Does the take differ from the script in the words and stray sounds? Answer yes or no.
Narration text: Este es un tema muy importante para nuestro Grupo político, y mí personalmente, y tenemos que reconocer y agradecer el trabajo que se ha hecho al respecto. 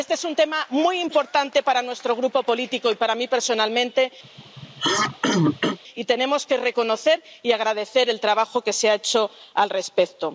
yes